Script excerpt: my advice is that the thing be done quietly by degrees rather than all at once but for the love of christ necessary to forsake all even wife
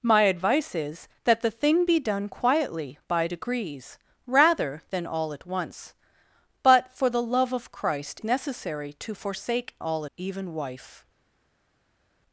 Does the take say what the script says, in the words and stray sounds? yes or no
yes